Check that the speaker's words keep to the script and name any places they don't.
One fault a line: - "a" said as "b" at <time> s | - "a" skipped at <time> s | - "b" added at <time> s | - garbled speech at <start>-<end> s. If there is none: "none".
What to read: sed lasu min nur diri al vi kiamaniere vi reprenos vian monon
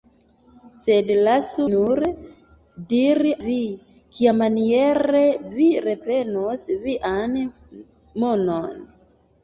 - "min" skipped at 1.6 s
- "al" skipped at 3.3 s